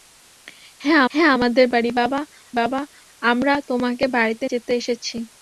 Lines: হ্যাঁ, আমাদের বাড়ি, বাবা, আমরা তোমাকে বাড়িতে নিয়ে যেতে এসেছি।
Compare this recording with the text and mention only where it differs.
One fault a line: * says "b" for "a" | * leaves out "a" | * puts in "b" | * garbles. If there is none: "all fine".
* puts in "হ্যাঁ"
* puts in "বাবা"
* leaves out "নিয়ে"